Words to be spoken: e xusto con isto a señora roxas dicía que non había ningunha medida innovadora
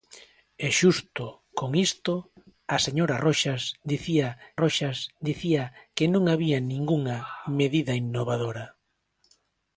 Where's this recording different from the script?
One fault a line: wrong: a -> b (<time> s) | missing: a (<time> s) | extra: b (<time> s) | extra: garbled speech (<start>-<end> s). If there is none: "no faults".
extra: roxas dicía (4.6 s)